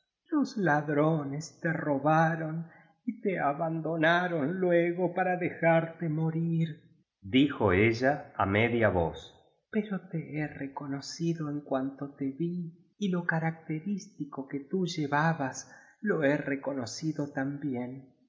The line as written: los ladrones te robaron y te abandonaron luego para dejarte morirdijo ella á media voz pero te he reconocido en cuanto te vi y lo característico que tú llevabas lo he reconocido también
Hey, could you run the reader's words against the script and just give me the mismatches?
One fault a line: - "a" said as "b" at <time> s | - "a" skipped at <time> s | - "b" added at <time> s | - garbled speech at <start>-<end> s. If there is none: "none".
none